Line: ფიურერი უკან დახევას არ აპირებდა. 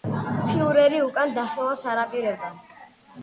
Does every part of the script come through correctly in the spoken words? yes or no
yes